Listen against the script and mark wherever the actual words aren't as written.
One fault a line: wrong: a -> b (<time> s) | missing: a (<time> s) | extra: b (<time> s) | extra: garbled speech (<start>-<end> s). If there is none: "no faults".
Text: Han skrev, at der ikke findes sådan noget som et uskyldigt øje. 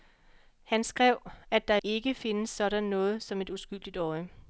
no faults